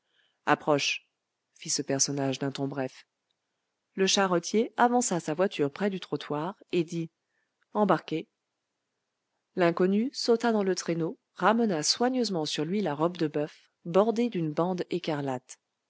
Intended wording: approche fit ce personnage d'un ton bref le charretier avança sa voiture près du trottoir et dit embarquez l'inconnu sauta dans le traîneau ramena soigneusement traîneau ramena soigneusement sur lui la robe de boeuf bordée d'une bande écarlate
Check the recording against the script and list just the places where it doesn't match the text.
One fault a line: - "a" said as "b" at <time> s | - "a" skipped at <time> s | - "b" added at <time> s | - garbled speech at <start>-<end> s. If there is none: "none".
- "traîneau ramena soigneusement" skipped at 12.5 s